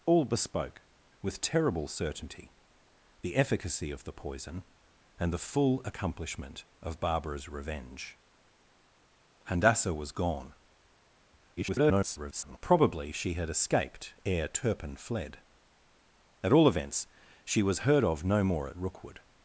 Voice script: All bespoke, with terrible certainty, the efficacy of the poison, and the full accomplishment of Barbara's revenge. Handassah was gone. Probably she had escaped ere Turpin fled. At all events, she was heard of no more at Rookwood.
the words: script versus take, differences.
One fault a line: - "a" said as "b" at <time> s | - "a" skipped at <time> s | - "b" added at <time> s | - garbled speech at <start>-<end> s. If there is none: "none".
- garbled speech at 11.6-12.6 s